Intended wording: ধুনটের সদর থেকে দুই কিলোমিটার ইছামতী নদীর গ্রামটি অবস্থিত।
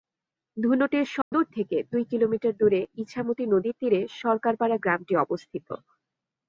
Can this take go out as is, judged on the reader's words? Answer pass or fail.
fail